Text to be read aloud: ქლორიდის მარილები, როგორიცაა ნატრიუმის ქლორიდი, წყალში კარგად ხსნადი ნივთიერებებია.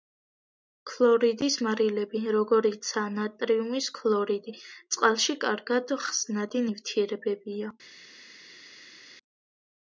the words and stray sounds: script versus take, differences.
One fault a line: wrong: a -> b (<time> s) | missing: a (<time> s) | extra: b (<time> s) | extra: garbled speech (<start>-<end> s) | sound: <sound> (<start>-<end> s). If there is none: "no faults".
no faults